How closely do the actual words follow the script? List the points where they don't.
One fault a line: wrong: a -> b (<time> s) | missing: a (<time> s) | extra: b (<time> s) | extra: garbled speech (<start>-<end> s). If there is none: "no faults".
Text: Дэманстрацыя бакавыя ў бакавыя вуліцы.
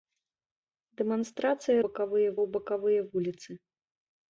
no faults